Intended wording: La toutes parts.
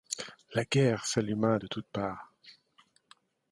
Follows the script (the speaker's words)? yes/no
no